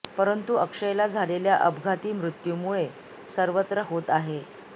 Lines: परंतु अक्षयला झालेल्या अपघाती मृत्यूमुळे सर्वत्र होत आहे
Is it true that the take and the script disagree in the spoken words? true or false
false